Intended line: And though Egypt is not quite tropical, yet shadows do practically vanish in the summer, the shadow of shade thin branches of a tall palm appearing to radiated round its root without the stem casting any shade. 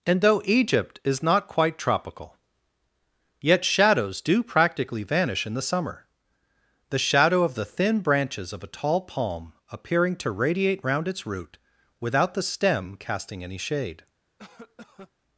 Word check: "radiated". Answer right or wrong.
wrong